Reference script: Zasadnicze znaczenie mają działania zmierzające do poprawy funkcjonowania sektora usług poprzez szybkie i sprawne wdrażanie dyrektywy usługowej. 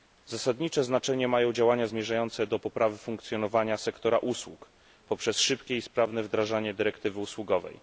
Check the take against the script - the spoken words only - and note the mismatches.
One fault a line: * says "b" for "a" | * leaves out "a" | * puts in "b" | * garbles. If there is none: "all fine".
all fine